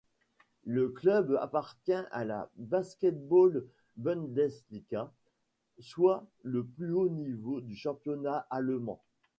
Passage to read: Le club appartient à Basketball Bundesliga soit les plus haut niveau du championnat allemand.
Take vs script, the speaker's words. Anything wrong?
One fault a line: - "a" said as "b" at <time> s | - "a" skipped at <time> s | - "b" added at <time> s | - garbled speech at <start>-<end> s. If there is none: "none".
- "la" added at 2.2 s
- "les" said as "le" at 6.4 s